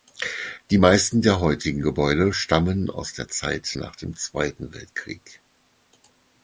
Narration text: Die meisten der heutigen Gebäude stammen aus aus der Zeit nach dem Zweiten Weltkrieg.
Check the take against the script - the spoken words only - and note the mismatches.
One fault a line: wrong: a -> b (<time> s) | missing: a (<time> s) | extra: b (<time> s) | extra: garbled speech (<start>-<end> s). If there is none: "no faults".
missing: aus (3.1 s)